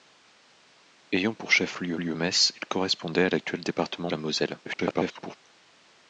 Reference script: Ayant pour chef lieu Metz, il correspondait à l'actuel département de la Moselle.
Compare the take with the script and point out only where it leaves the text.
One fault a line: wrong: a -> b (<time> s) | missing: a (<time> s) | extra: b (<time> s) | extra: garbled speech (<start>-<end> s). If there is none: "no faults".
extra: lieu (2.0 s)
missing: de (4.1 s)
extra: garbled speech (4.6-5.3 s)